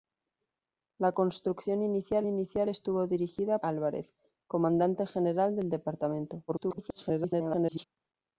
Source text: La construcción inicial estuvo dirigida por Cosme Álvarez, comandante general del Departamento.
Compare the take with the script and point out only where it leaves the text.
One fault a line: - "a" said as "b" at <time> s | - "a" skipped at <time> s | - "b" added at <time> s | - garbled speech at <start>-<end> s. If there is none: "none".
- "inicial" added at 2.3 s
- "por Cosme" skipped at 3.6 s
- garbled speech at 6.5-7.8 s